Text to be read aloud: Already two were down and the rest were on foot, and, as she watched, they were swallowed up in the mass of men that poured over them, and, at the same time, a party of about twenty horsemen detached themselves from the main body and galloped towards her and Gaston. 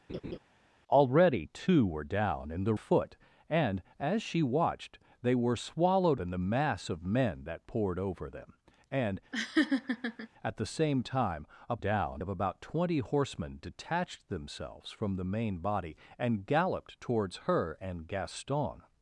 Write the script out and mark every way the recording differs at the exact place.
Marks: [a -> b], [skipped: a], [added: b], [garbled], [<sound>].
[laugh] Already two were down and the [skipped: rest were on] foot, and, as she watched, they were swallowed [skipped: up] in the mass of men that poured over them, and, [laugh] at the same time, a [party -> down] of about twenty horsemen detached themselves from the main body and galloped towards her and Gaston.